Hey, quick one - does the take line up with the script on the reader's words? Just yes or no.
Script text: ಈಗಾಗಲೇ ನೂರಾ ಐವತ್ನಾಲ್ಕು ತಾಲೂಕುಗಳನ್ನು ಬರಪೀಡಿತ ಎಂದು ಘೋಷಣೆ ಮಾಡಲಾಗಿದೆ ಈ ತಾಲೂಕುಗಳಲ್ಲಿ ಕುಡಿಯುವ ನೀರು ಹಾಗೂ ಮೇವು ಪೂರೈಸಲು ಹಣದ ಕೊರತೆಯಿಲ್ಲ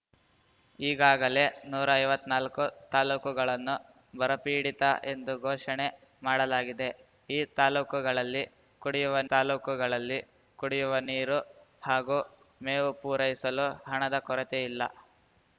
no